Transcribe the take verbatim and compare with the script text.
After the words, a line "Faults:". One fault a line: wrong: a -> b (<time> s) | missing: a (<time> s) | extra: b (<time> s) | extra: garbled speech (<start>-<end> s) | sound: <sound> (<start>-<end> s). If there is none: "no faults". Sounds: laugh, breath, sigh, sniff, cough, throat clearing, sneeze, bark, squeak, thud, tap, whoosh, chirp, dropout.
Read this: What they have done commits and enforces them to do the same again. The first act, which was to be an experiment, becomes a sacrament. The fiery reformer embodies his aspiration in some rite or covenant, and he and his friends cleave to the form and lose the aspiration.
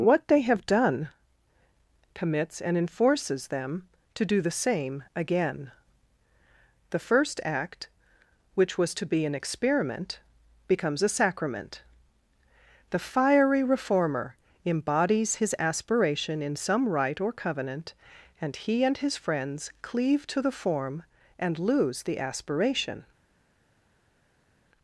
What they have done commits and enforces them to do the same again. The first act, which was to be an experiment, becomes a sacrament. The fiery reformer embodies his aspiration in some rite or covenant, and he and his friends cleave to the form and lose the aspiration.
Faults:
no faults